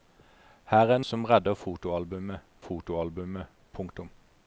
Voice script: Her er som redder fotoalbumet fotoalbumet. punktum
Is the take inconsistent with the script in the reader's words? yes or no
no